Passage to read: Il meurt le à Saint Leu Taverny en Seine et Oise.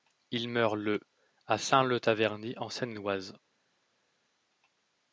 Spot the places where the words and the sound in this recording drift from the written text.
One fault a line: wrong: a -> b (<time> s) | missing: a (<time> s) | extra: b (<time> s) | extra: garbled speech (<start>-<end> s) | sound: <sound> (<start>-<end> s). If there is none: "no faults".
no faults